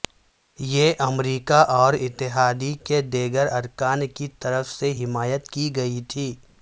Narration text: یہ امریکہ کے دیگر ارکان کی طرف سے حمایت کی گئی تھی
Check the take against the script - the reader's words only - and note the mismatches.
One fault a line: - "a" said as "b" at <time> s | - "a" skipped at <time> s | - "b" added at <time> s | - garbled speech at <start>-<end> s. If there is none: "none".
- "اور اتحاد" added at 1.7 s